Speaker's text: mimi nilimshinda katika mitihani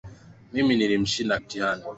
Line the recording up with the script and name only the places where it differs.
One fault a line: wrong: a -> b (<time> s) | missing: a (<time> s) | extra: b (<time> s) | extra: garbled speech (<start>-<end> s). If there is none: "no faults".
missing: katika (1.4 s)